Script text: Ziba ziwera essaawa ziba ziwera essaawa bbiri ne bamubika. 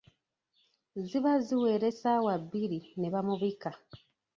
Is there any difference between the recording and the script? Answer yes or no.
yes